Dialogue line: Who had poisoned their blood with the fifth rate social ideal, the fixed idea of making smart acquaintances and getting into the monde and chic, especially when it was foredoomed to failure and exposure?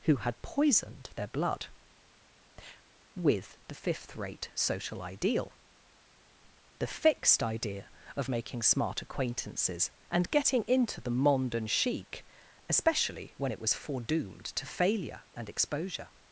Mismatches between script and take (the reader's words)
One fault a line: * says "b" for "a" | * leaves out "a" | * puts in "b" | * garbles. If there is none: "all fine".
all fine